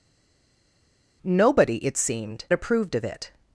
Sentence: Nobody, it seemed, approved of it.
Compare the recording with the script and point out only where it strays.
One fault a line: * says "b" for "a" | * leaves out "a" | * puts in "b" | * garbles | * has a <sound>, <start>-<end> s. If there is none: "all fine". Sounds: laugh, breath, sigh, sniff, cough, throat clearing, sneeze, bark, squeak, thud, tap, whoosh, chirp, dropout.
all fine